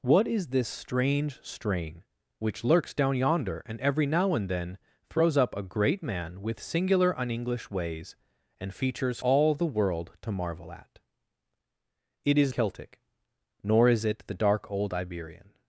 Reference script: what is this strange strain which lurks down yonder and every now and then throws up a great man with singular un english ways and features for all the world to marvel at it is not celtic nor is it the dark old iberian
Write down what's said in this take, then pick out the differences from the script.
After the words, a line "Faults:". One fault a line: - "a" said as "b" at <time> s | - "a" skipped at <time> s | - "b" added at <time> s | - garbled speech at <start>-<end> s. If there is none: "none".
what is this strange strain which lurks down yonder and every now and then throws up a great man with singular un english ways and features all the world to marvel at it is celtic nor is it the dark old iberian
Faults:
- "for" skipped at 9.2 s
- "not" skipped at 12.5 s